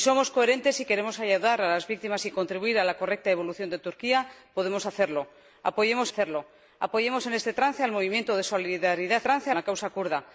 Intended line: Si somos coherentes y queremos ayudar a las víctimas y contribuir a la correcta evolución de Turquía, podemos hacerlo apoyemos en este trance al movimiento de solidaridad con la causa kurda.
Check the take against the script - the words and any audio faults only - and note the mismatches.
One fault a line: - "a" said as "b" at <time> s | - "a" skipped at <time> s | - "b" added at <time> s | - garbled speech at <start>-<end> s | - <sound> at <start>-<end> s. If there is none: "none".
- "hacerlo apoyemos" added at 6.1 s
- "con" said as "trance" at 9.2 s